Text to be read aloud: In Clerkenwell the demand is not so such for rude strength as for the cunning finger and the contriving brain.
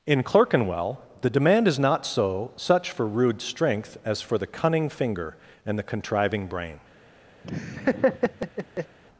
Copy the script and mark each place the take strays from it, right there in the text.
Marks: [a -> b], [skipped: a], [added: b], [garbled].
In Clerkenwell the demand is not so such for rude strength as for the cunning finger and the contriving brain.